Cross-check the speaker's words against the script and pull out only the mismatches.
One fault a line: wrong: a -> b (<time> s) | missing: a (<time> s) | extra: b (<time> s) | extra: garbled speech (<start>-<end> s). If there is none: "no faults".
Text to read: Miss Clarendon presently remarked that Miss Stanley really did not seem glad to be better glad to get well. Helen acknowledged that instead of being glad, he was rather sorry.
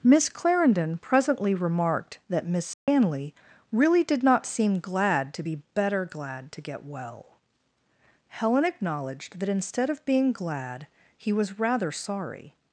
no faults